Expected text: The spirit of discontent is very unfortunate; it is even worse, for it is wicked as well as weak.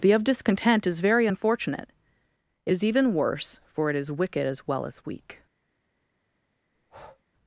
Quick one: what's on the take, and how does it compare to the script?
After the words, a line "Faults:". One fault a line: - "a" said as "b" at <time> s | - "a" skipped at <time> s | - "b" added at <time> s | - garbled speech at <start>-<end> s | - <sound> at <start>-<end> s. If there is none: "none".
The of discontent is very unfortunate; it is even worse, for it is wicked as well as weak.
Faults:
- "spirit" skipped at 0.1 s
- breath at 6.7-7.2 s